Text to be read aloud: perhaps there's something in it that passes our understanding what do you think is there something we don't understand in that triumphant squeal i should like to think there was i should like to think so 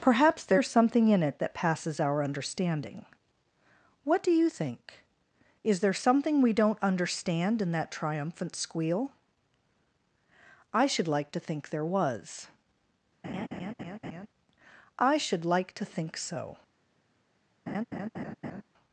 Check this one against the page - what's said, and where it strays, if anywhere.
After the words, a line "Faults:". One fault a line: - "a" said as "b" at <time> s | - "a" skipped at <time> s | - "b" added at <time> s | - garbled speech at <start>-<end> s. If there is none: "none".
perhaps there's something in it that passes our understanding what do you think is there something we don't understand in that triumphant squeal i should like to think there was i should like to think so
Faults:
none